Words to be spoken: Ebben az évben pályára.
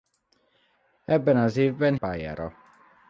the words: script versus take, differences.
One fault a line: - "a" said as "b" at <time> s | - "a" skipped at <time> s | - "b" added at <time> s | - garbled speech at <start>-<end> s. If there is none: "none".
none